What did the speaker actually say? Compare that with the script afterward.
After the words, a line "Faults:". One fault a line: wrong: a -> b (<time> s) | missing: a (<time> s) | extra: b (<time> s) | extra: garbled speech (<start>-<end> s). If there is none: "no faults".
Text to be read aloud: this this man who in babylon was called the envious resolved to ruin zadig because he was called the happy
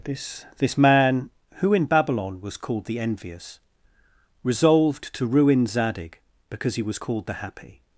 this this man who in babylon was called the envious resolved to ruin zadig because he was called the happy
Faults:
no faults